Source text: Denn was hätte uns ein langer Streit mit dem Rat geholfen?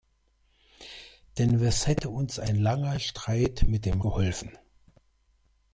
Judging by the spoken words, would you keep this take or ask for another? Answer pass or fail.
fail